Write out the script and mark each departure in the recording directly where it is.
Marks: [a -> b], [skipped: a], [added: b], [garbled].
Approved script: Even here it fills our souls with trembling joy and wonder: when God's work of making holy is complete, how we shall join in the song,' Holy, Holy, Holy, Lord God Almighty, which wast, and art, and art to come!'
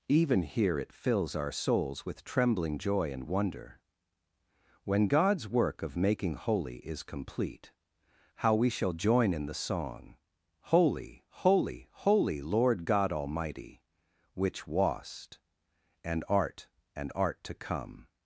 Even here it fills our souls with trembling joy and wonder: when God's work of making holy is complete, how we shall join in the song,' Holy, Holy, Holy, Lord God Almighty, which wast, and art, and art to come!'